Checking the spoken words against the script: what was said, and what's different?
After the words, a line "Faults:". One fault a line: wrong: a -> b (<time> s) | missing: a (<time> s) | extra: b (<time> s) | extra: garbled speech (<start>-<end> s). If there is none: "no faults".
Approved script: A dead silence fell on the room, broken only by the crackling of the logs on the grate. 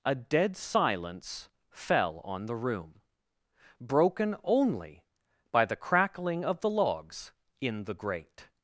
A dead silence fell on the room, broken only by the crackling of the logs in the grate.
Faults:
wrong: on -> in (7.6 s)